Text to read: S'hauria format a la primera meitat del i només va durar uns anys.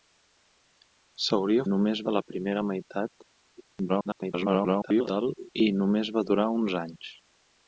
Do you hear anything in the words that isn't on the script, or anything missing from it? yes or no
yes